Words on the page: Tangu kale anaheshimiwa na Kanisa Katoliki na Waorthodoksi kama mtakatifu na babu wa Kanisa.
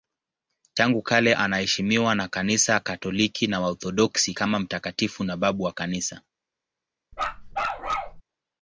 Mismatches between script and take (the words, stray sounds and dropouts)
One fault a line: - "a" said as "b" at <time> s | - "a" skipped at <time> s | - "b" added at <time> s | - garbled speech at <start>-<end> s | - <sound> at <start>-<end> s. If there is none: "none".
- bark at 7.1-8.2 s